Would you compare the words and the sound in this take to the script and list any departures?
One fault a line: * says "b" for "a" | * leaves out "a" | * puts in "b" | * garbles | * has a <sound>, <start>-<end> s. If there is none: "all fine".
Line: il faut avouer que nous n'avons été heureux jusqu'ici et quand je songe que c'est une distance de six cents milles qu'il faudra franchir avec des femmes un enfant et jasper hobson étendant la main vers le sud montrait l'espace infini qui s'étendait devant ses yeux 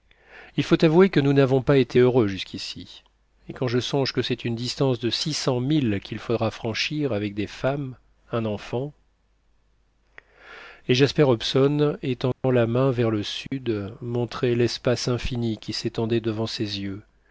* puts in "pas"
* has a dropout, 12.3-12.4 s
* has a dropout, 13.5-13.5 s